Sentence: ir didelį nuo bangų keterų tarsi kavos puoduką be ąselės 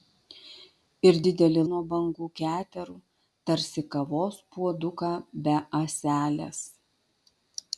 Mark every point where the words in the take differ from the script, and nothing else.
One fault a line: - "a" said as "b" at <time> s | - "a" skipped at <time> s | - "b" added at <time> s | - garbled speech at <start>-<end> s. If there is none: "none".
none